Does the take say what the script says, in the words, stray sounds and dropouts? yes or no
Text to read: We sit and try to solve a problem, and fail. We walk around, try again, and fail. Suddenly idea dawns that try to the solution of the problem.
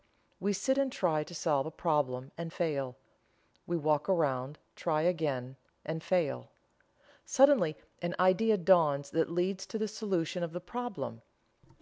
no